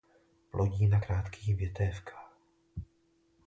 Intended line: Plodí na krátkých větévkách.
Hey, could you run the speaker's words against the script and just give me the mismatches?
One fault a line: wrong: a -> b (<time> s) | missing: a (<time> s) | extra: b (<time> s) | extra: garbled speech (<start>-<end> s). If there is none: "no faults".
no faults